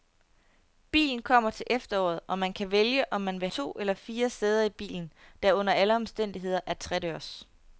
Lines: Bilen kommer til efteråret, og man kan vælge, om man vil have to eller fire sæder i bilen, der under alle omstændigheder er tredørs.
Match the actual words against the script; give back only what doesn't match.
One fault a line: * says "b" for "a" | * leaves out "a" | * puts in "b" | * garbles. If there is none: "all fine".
* leaves out "have"